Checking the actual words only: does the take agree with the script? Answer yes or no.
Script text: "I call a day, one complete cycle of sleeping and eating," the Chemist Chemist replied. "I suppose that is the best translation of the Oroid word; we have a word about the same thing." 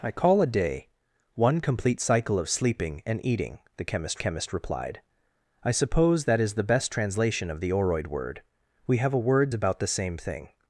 yes